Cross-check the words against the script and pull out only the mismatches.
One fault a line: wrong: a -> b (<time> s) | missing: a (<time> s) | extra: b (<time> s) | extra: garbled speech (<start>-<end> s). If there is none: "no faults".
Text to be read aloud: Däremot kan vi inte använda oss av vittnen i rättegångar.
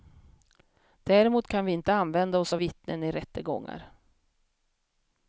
no faults